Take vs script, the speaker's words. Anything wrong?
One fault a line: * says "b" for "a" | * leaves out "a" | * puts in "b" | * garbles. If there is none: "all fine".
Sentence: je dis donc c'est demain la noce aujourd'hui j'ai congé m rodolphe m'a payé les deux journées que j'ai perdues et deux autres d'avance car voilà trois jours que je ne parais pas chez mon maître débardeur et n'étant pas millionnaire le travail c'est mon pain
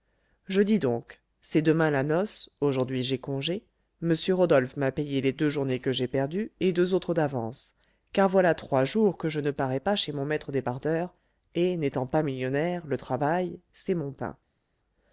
all fine